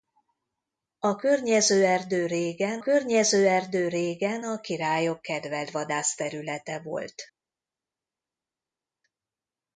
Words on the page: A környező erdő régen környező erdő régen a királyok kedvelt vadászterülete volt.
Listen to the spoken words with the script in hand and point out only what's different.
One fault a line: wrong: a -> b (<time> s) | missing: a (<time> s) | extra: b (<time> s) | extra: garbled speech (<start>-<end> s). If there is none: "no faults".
no faults